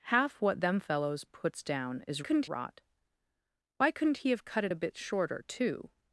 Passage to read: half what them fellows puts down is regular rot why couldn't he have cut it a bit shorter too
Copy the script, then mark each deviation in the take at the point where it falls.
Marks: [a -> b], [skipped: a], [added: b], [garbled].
half what them fellows puts down is [regular -> couldn't] rot why couldn't he have cut it a bit shorter too